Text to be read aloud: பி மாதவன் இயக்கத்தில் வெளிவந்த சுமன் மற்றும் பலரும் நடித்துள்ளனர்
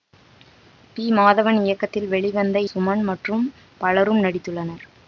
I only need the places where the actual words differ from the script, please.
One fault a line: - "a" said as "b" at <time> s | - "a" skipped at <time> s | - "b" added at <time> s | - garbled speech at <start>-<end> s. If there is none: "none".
none